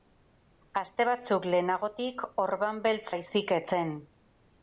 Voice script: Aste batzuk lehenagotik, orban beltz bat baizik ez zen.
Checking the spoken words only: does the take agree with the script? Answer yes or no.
no